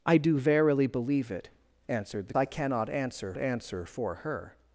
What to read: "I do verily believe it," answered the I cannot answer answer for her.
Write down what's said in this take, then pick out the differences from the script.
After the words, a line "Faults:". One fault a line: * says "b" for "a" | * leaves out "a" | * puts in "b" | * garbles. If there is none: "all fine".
"I do verily believe it," answered the I cannot answer answer for her.
Faults:
all fine